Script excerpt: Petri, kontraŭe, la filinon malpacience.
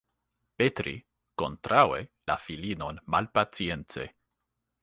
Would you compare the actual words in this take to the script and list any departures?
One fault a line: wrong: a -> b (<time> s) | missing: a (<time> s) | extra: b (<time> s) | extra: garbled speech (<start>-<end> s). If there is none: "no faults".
no faults